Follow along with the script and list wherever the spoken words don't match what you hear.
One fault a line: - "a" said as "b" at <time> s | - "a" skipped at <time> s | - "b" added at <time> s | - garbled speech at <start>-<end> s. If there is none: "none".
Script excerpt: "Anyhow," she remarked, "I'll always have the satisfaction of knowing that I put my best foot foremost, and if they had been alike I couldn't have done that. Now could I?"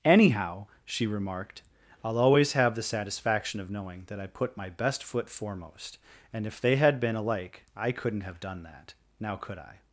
none